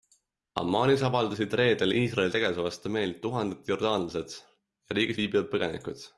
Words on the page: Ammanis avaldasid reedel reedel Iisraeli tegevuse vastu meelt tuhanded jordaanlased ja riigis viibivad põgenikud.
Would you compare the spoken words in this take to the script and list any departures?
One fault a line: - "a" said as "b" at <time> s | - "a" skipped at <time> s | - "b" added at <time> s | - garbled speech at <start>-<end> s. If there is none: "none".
- "reedel" skipped at 1.9 s